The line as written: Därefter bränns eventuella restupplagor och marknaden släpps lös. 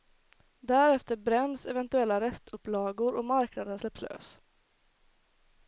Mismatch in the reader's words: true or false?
false